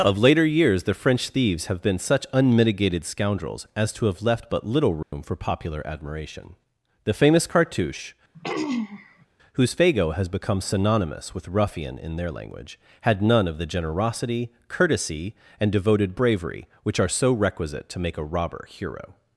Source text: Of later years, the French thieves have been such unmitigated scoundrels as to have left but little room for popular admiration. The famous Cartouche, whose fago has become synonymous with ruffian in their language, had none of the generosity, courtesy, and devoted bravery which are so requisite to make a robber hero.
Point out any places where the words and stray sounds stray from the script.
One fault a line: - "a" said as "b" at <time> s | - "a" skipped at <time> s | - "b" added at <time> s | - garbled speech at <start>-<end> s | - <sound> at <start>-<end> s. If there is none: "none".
- dropout at 5.0-5.1 s
- throat clearing at 8.3-9.3 s